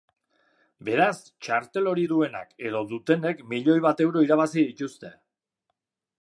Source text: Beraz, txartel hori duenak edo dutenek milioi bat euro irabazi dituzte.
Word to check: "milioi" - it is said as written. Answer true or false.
true